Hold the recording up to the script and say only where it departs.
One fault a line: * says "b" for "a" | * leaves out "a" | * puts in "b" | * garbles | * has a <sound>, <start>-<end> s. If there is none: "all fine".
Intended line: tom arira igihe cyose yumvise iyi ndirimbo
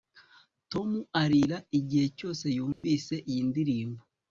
* has a dropout, 2.7-2.8 s